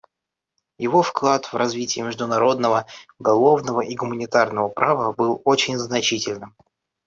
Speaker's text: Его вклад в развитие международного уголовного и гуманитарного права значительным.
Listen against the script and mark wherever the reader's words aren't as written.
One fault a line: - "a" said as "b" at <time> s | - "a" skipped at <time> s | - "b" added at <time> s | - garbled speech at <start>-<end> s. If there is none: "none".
- "был очень" added at 5.1 s